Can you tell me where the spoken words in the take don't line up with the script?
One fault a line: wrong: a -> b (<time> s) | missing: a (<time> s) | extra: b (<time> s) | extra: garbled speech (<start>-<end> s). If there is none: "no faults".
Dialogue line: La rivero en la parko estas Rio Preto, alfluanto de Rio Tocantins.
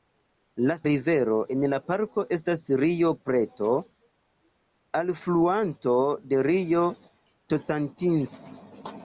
no faults